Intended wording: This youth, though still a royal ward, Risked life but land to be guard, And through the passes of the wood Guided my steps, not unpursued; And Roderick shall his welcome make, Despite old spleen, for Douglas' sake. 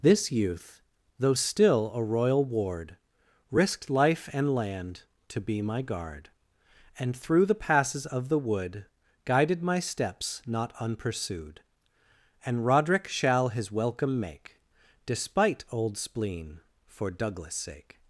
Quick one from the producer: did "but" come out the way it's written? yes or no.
no